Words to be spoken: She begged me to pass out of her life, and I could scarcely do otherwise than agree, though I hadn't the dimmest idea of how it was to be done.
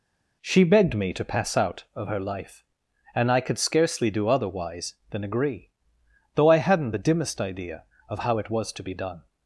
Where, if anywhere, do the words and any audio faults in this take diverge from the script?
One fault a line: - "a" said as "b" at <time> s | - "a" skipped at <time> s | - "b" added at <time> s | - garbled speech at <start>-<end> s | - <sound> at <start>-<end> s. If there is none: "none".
none